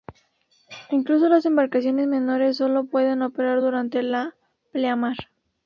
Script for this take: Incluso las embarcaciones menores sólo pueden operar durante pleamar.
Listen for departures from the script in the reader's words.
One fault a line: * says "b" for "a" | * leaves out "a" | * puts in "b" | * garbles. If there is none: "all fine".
* puts in "la"